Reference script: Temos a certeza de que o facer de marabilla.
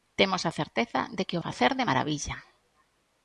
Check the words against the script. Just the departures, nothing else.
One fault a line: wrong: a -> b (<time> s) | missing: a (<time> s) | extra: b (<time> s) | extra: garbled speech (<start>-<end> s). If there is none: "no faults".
no faults